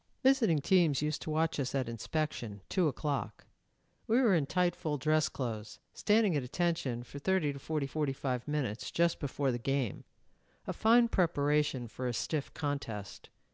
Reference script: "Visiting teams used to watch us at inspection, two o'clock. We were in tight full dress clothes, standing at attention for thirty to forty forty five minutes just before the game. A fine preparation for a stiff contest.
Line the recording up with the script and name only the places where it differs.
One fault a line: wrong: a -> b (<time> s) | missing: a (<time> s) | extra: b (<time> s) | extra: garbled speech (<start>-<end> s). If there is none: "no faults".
no faults